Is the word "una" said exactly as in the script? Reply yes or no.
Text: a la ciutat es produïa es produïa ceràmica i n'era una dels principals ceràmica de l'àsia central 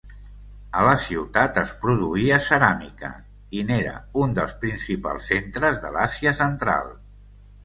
no